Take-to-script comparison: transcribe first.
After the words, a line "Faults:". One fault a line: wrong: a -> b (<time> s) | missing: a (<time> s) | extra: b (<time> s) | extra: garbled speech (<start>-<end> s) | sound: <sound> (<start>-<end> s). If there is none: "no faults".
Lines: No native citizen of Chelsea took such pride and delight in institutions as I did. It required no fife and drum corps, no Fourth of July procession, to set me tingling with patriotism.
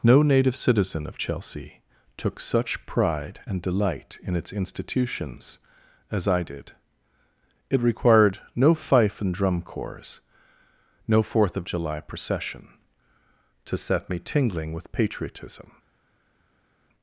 No native citizen of Chelsea took such pride and delight in its institutions as I did. It required no fife and drum corps, no Fourth of July procession, to set me tingling with patriotism.
Faults:
extra: its (4.4 s)